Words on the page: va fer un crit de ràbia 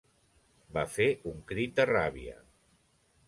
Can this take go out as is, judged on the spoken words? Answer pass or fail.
pass